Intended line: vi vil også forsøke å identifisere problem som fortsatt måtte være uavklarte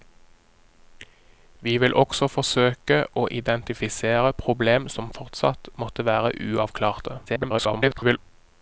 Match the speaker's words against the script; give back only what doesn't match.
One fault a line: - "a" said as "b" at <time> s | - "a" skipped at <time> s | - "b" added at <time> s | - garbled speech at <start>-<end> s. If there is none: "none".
- garbled speech at 7.3-8.2 s